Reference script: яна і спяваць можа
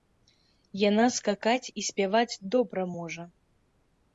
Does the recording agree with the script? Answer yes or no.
no